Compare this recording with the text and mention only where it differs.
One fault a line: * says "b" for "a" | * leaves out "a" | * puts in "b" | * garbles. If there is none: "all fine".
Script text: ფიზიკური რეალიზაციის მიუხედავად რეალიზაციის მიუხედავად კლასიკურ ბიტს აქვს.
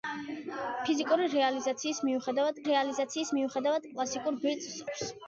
all fine